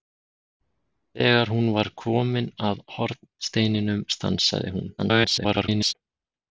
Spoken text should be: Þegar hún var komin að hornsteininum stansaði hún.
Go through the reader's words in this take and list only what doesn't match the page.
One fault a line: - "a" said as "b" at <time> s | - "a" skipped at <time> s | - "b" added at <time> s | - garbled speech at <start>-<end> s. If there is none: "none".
- garbled speech at 5.0-5.9 s